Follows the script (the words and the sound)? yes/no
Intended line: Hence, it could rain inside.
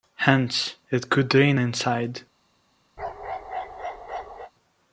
no